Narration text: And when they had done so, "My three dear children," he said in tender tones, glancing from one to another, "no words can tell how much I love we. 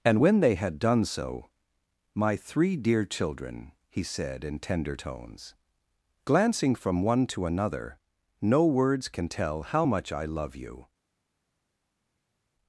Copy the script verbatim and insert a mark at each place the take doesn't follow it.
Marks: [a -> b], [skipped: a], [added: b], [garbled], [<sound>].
And when they had done so, "My three dear children," he said in tender tones, glancing from one to another, "no words can tell how much I love [we. -> you]